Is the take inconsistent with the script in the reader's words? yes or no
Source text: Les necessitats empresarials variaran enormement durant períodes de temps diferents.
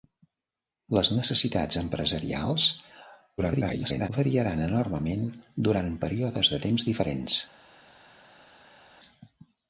yes